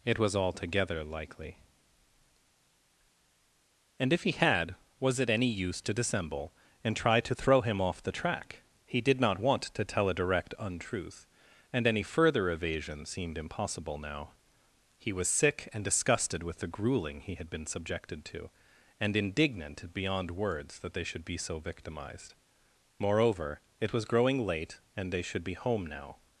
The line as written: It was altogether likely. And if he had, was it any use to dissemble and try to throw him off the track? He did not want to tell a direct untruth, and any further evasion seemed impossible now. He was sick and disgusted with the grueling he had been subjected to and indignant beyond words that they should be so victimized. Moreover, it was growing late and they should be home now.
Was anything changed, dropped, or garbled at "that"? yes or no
no